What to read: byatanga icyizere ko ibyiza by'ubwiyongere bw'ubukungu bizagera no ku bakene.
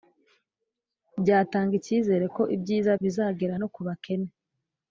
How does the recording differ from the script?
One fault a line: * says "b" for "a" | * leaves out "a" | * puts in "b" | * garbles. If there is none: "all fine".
* leaves out "by'ubwiyongere bw'ubukungu"